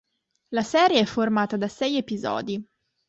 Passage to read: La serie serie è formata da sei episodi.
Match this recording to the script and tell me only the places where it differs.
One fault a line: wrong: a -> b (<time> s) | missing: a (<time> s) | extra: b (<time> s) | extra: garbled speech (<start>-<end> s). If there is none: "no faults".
missing: serie (1.0 s)